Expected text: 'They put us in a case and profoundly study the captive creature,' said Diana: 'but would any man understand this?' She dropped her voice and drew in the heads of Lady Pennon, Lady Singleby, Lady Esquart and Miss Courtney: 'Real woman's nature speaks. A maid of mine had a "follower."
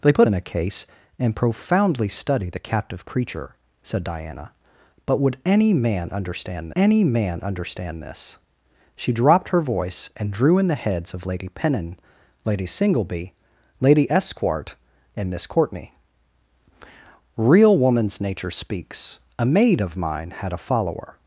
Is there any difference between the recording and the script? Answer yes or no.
yes